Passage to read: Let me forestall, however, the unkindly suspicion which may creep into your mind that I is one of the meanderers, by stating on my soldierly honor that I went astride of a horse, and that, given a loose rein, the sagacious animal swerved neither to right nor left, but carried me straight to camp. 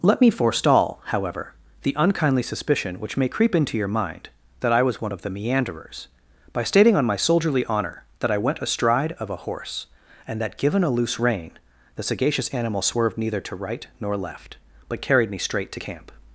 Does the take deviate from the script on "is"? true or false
true